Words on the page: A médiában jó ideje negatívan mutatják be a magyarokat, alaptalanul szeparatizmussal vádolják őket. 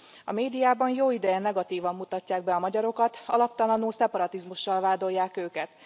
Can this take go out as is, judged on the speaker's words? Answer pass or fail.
pass